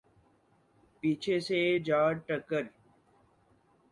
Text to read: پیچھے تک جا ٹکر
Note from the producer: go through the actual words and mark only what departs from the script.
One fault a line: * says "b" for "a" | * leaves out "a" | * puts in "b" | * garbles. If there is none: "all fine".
* says "سے" for "تک"